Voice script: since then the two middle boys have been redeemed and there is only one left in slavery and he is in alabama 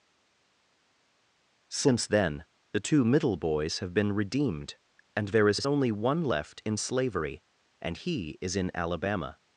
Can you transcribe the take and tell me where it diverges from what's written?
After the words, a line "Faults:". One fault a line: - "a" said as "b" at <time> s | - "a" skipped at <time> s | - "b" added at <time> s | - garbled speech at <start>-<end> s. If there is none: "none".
since then the two middle boys have been redeemed and there is is only one left in slavery and he is in alabama
Faults:
- "is" added at 5.5 s